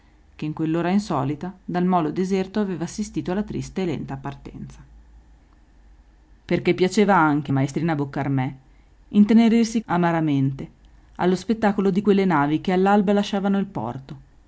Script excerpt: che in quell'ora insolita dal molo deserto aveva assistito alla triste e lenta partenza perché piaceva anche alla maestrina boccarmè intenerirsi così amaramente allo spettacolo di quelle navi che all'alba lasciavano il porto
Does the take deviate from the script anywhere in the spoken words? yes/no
yes